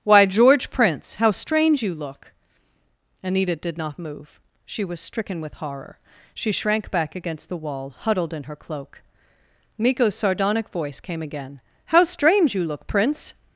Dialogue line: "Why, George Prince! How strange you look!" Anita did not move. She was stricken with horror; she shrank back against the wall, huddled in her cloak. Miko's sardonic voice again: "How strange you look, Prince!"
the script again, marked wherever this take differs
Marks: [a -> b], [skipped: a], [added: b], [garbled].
"Why, George Prince! How strange you look!" Anita did not move. She was stricken with horror; she shrank back against the wall, huddled in her cloak. Miko's sardonic voice [added: came] again: "How strange you look, Prince!"